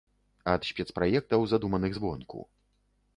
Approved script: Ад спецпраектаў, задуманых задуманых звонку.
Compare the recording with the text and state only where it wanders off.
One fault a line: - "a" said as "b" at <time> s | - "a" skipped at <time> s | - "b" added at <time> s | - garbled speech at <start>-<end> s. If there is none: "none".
- "задуманых" skipped at 1.9 s